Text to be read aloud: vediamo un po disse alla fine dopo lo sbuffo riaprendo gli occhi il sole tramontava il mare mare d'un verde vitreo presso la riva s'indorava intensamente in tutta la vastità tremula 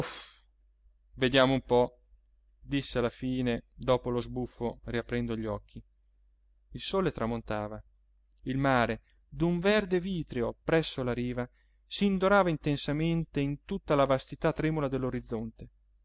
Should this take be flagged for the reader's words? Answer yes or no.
yes